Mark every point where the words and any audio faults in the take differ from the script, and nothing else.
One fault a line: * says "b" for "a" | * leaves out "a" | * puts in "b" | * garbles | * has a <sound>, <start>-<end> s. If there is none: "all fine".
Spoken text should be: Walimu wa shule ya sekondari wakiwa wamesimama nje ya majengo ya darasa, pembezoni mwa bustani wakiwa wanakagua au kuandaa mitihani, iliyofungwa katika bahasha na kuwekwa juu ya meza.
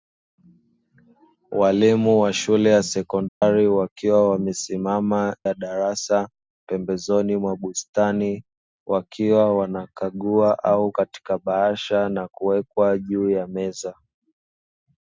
* has a dropout, 3.3-3.4 s
* leaves out "nje"
* leaves out "majengo ya"
* leaves out "kuandaa mitihani iliyofungwa"